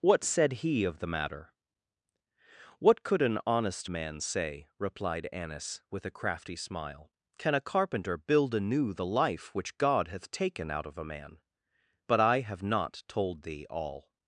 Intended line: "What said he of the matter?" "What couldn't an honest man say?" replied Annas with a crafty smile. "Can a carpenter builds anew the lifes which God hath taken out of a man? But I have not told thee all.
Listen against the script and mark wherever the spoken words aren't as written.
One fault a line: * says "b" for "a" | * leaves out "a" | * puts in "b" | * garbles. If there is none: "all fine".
* says "could" for "couldn't"
* says "build" for "builds"
* says "life" for "lifes"